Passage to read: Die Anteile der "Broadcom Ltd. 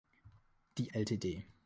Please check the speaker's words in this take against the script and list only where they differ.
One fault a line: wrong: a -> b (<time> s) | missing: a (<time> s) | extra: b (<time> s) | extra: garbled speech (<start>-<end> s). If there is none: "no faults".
missing: Anteile der Broadcom (0.9 s)